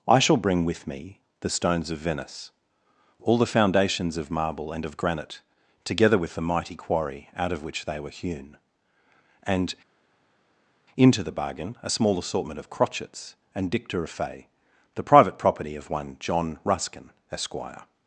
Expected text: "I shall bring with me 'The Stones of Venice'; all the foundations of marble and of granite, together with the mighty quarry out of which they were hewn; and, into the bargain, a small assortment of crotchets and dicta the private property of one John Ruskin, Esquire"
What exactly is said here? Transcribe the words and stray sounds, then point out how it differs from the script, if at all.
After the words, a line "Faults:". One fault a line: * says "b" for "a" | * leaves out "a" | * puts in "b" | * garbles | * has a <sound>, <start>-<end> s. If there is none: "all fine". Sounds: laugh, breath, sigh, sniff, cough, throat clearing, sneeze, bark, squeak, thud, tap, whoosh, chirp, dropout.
"I shall bring with me 'The Stones of Venice'; all the foundations of marble and of granite, together with the mighty quarry out of which they were hewn; and, into the bargain, a small assortment of crotchets and dicta of fay the private property of one John Ruskin, Esquire"
Faults:
* puts in "of fay"